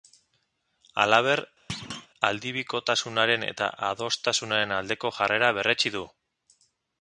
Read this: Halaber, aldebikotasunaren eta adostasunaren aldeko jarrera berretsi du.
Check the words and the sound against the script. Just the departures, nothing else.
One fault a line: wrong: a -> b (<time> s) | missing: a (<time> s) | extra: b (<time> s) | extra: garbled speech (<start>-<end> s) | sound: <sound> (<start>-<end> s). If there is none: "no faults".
sound: thud (1.7-2.1 s)